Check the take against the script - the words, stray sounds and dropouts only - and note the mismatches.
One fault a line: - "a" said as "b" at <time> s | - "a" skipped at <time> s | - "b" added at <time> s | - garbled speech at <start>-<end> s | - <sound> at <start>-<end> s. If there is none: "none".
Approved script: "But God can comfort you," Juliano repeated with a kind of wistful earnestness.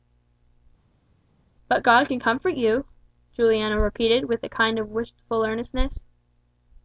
none